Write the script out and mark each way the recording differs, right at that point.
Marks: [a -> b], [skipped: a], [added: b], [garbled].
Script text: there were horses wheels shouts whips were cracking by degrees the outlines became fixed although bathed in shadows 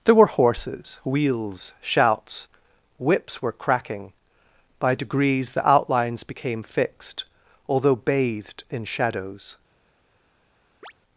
there were horses wheels shouts whips were cracking by degrees the outlines became fixed although bathed in shadows